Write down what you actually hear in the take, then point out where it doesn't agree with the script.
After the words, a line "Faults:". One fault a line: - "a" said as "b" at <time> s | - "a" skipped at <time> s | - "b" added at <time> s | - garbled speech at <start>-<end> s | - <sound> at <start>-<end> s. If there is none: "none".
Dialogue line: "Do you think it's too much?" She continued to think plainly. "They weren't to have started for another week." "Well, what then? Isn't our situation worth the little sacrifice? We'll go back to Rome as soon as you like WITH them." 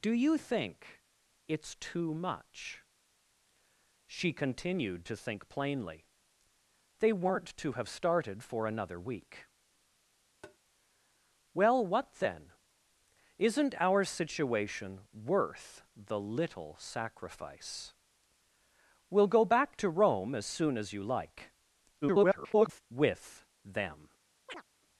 "Do you think it's too much?" She continued to think plainly. "They weren't to have started for another week." "Well, what then? Isn't our situation worth the little sacrifice? We'll go back to Rome as soon as you like [garbled] WITH them."
Faults:
- tap at 10.4-10.6 s
- garbled speech at 22.0-22.8 s
- chirp at 24.5-24.6 s